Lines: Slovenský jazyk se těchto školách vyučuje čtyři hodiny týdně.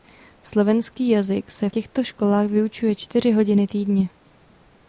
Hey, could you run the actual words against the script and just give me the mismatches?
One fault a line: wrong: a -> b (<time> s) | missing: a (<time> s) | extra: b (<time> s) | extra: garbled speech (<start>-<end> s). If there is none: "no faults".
no faults